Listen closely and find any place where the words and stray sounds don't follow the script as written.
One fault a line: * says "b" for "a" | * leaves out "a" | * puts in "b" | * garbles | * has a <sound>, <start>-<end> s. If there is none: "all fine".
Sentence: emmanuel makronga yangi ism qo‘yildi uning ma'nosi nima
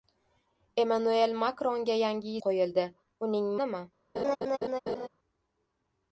* leaves out "ism"
* leaves out "ma'nosi"
* has a laugh, 4.2-5.1 s